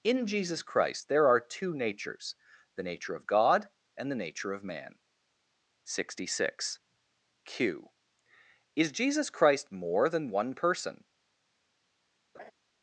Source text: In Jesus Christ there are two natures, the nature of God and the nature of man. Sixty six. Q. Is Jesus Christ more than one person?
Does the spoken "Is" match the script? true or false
true